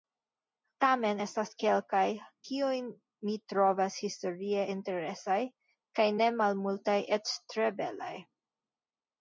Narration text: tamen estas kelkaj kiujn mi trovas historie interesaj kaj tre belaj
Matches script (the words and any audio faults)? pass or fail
fail